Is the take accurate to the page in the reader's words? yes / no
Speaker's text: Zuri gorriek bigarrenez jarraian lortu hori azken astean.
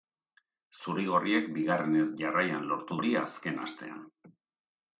yes